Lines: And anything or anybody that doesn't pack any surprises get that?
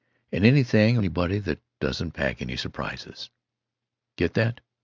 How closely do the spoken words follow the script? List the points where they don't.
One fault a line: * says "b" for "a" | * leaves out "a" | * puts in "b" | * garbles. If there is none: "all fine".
* leaves out "or"